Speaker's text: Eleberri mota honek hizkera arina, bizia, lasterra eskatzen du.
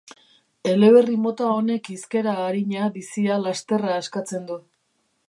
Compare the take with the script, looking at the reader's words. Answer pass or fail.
pass